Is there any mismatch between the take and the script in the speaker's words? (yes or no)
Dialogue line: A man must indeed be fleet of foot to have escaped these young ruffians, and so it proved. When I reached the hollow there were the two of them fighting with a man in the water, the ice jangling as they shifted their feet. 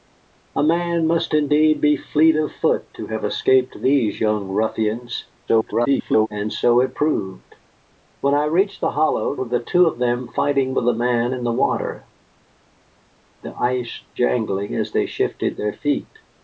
yes